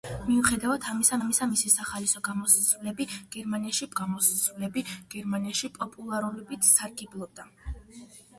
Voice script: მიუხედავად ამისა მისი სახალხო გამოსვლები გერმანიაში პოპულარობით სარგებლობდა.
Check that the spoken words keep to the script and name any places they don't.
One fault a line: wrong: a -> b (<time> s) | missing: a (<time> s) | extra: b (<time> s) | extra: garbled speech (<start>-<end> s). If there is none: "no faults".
extra: ამისა (1.2 s)
extra: გამოსვლები გერმანიაში (4.0 s)